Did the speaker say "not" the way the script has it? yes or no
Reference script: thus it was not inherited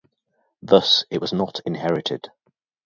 yes